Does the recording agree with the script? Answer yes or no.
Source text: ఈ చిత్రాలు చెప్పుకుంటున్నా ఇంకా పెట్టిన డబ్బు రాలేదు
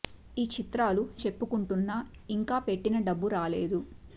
yes